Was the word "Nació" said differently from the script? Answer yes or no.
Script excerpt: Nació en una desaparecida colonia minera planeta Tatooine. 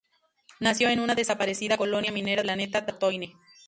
no